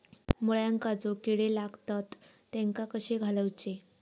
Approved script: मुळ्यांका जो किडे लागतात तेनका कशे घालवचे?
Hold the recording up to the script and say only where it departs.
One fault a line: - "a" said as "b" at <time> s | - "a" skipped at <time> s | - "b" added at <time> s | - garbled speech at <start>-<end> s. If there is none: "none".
none